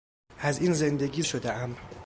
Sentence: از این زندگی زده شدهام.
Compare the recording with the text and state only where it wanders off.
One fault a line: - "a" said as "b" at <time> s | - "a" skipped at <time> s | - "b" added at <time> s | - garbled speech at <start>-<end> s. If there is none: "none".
- "زده" skipped at 1.2 s